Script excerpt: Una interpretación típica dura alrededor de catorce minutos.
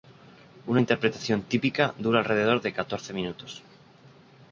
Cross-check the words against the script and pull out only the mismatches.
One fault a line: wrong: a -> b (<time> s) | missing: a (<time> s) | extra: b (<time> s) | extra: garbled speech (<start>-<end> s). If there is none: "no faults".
no faults